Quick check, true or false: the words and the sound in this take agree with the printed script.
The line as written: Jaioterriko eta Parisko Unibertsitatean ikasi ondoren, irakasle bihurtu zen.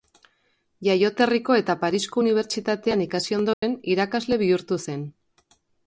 false